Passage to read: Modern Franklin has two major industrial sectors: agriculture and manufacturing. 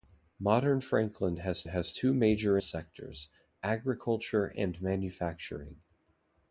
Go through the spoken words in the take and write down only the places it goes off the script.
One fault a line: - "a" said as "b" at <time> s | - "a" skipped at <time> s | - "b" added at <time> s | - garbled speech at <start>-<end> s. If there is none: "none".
- "has" added at 1.7 s
- "industrial" skipped at 2.6 s